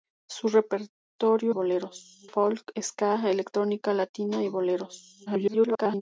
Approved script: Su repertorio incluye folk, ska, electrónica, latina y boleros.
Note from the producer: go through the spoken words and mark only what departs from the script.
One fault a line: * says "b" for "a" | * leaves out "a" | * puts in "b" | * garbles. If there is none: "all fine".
* says "boleros" for "incluye"
* garbles